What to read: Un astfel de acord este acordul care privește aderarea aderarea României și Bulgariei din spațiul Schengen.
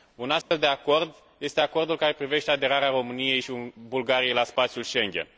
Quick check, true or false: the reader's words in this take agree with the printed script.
false